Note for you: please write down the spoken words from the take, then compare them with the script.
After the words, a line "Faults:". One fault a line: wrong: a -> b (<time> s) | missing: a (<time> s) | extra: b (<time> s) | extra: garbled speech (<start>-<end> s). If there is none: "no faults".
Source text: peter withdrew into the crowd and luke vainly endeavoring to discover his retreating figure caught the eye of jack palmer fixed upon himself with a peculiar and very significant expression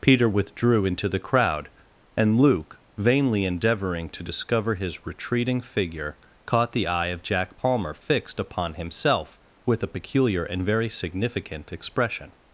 peter withdrew into the crowd and luke vainly endeavoring to discover his retreating figure caught the eye of jack palmer fixed upon himself with a peculiar and very significant expression
Faults:
no faults